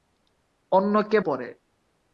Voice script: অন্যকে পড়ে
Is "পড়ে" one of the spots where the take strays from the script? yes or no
no